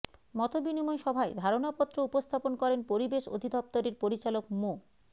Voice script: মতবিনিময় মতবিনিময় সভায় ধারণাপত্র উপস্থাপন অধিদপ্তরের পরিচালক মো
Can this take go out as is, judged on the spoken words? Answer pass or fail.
fail